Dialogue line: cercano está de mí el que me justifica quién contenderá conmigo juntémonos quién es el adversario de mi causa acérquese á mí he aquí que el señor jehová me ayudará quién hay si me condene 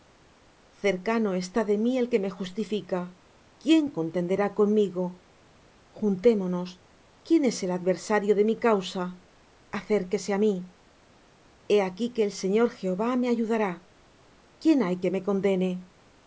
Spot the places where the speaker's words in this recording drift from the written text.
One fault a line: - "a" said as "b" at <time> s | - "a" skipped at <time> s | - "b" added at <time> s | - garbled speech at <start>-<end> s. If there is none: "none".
- "si" said as "que" at 15.0 s